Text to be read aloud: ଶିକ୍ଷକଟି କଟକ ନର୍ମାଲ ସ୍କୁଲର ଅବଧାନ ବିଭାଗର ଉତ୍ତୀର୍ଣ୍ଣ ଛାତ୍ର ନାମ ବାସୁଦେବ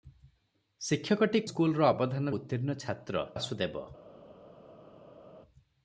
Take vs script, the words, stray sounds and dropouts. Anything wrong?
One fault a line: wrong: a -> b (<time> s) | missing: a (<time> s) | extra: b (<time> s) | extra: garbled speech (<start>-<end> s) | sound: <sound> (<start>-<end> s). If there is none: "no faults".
missing: କଟକ ନର୍ମାଲ (1.4 s)
missing: ବିଭାଗର (2.3 s)
missing: ନାମ (3.3 s)